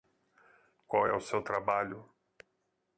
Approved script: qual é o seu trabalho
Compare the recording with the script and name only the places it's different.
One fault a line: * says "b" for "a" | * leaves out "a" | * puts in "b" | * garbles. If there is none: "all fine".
all fine